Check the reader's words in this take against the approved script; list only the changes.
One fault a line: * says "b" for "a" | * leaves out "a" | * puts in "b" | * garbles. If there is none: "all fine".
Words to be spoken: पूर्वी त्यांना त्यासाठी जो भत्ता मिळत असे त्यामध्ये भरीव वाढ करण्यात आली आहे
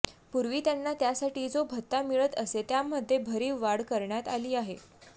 all fine